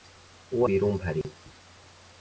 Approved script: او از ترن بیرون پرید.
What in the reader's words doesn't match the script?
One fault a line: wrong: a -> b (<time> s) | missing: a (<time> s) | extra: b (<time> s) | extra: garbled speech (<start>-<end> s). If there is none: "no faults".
missing: از ترن (0.7 s)